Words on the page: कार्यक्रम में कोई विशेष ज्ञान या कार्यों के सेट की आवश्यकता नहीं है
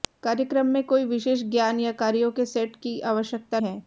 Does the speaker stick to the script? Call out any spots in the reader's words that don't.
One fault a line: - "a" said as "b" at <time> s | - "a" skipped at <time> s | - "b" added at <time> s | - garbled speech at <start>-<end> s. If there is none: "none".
- "नहीं" skipped at 3.6 s